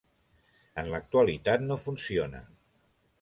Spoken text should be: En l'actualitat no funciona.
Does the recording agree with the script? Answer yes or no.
yes